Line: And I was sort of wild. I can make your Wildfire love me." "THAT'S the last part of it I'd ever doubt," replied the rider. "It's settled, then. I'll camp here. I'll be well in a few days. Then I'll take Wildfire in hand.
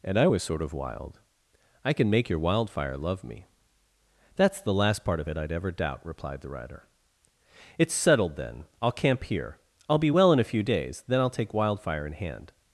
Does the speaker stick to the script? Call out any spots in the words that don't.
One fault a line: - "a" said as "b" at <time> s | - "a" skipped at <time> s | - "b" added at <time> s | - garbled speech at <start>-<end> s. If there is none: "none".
none